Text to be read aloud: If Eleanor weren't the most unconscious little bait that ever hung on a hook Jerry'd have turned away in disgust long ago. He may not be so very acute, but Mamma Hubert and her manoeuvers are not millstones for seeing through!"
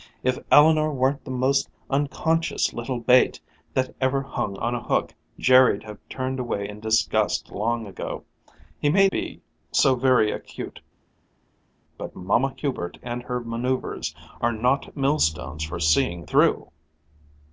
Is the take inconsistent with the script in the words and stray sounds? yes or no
yes